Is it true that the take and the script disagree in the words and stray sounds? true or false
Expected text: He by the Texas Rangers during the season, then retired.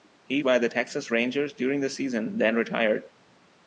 false